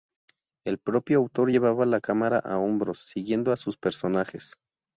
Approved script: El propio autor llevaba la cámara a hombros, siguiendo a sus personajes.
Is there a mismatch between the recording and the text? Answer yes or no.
no